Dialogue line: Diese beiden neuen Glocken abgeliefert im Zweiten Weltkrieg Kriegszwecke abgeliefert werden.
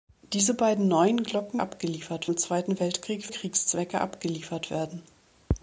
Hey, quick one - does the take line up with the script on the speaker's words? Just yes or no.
yes